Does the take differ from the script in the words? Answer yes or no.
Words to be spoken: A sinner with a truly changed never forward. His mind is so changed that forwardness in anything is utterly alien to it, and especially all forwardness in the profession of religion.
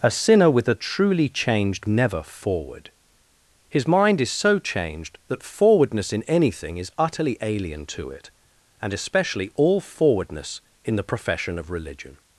no